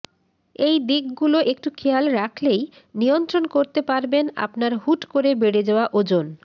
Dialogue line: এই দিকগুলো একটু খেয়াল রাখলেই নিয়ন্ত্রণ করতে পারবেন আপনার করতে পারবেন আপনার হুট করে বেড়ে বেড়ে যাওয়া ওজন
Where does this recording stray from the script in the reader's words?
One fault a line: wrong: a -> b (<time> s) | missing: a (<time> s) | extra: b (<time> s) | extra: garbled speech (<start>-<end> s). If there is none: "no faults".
missing: করতে পারবেন আপনার (4.7 s)
missing: বেড়ে (5.6 s)